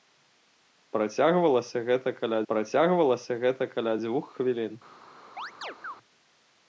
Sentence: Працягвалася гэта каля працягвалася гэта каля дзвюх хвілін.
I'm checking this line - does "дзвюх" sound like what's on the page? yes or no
yes